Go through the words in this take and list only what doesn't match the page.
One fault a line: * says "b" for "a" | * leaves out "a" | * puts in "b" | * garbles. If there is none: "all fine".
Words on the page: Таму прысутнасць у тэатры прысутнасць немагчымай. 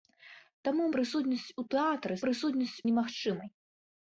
all fine